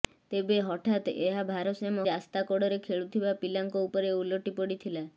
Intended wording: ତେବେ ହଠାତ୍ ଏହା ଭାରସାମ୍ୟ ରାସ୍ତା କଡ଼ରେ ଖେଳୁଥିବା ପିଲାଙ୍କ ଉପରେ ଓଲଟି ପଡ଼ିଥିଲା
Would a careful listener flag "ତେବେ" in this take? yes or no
no